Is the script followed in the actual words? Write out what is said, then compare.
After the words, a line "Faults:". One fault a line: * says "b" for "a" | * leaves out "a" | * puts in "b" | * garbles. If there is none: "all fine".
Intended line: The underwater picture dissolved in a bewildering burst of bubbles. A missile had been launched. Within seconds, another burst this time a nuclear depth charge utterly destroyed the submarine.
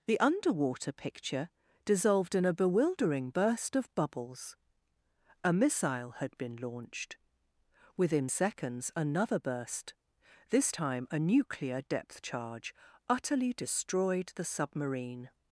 The underwater picture dissolved in a bewildering burst of bubbles. A missile had been launched. Within seconds, another burst this time a nuclear depth charge utterly destroyed the submarine.
Faults:
all fine